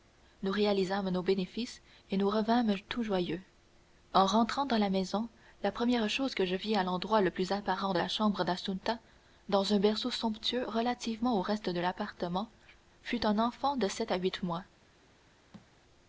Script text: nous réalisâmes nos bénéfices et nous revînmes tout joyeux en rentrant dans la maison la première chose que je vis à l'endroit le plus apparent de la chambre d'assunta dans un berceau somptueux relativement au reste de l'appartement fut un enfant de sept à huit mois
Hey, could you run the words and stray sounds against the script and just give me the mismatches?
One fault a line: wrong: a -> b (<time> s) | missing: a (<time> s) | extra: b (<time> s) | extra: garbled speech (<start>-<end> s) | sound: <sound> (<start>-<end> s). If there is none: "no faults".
sound: thud (15.5-15.7 s)